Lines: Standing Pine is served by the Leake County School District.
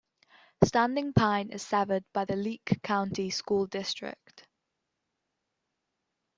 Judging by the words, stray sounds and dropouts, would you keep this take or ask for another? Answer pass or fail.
pass